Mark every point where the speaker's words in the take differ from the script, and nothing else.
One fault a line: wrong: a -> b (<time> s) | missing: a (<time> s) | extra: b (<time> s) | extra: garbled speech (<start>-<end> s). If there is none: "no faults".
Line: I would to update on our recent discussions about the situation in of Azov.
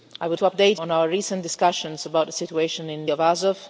no faults